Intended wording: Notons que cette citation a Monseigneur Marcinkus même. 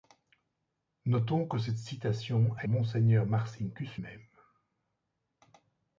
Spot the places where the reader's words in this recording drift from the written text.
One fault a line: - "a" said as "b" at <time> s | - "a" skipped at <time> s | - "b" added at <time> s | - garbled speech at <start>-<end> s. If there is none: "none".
none